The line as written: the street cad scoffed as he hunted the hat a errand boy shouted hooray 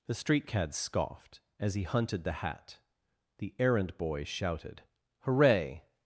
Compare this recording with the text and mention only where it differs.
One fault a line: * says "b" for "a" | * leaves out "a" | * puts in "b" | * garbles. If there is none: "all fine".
* says "the" for "a"